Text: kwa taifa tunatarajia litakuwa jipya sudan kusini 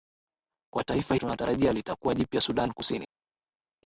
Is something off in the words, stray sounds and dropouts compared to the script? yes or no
no